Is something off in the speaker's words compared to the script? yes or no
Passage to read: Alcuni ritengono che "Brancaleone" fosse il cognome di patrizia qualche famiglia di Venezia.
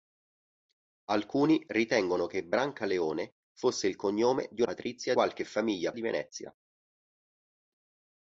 no